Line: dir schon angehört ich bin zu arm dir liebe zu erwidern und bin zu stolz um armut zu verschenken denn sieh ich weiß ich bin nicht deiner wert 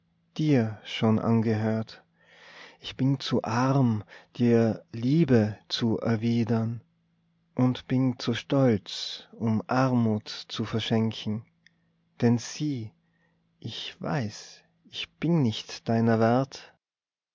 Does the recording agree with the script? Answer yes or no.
yes